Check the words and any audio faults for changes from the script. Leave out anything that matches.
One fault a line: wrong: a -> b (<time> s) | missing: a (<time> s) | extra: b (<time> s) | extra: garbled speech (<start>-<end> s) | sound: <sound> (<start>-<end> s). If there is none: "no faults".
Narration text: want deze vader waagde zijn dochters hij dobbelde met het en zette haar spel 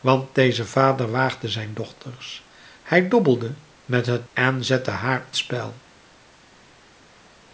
no faults